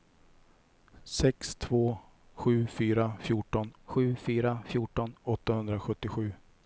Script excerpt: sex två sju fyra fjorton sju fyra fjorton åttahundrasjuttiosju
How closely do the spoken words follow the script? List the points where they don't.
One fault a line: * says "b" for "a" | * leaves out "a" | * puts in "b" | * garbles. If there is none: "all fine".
all fine